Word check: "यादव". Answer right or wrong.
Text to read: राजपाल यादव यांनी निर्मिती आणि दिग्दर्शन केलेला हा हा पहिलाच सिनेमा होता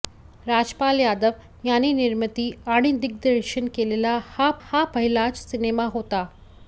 right